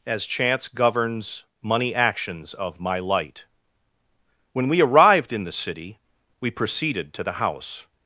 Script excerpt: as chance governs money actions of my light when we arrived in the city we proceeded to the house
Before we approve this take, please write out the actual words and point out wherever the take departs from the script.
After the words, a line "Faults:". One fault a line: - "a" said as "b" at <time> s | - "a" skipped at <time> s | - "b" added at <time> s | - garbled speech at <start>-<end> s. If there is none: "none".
as chance governs money actions of my light when we arrived in the city we proceeded to the house
Faults:
none